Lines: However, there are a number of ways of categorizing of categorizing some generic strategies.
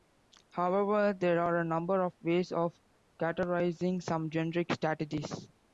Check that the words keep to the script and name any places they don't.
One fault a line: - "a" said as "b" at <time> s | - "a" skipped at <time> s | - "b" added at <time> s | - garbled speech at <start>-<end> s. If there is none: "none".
- "of categorizing" skipped at 4.0 s